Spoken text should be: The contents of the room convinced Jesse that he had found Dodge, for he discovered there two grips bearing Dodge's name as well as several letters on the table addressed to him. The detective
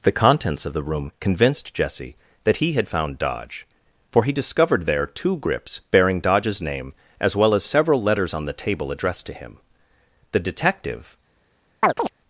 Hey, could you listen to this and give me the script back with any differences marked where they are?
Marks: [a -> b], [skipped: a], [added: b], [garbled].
The contents of the room convinced Jesse that he had found Dodge, for he discovered there two grips bearing Dodge's name as well as several letters on the table addressed to him. The detective